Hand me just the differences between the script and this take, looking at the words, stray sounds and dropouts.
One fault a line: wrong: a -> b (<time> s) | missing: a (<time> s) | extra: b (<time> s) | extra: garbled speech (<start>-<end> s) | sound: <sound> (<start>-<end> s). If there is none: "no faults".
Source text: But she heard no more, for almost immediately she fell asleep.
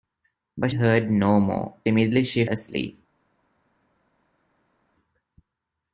missing: she (0.7 s)
missing: for almost (1.7 s)
missing: fell (2.5 s)